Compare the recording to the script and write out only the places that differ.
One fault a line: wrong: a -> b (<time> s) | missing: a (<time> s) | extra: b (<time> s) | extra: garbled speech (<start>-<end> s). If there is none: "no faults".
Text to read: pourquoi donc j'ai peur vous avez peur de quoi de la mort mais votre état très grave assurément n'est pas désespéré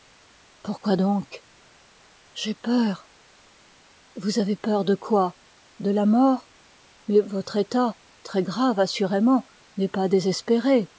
no faults